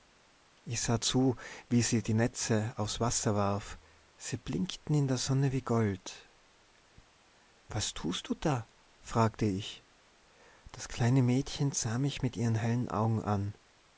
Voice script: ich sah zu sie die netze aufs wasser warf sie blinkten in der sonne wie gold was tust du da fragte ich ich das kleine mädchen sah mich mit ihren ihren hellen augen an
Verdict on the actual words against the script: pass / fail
fail